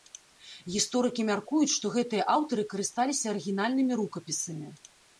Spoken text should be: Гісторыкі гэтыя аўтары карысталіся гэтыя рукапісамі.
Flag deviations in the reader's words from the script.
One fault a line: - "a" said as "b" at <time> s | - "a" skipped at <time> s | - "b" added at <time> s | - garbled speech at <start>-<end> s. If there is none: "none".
- "мяркуюць што" added at 1.3 s
- "гэтыя" said as "арыгінальнымі" at 3.4 s